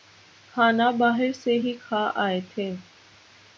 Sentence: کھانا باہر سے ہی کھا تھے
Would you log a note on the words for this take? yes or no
yes